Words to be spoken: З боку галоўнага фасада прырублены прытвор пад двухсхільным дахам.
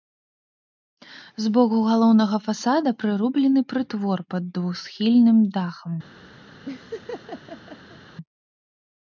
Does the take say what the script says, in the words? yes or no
yes